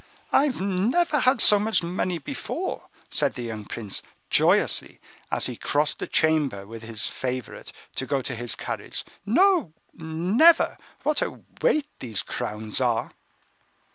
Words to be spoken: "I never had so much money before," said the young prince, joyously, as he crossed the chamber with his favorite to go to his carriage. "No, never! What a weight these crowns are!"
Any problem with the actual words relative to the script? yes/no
no